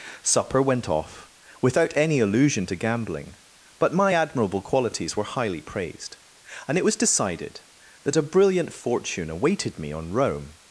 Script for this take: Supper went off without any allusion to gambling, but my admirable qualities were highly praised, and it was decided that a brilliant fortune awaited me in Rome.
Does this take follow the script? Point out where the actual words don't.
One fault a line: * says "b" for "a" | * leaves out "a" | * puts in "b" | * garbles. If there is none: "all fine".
* says "on" for "in"